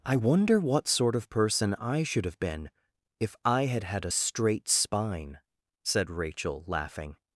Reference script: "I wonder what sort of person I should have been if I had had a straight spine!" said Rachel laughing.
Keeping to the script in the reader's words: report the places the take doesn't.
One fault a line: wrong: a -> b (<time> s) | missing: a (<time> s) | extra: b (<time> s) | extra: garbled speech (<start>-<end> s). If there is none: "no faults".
no faults